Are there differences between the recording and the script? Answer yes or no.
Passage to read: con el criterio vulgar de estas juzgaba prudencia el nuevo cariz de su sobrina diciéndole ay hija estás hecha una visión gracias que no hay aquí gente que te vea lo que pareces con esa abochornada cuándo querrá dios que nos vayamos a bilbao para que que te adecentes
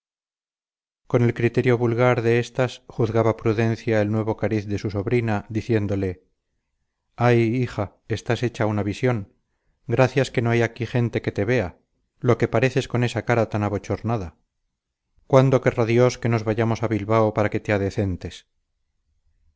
yes